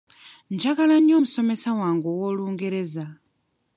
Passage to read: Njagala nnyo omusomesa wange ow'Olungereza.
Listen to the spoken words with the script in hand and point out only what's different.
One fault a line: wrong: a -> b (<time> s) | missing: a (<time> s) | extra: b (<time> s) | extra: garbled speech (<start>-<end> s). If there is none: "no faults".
no faults